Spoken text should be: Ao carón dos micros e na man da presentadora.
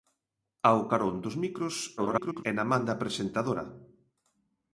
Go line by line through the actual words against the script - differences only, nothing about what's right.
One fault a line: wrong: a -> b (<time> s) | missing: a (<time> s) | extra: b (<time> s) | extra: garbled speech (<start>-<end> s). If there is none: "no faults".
extra: garbled speech (2.0-2.4 s)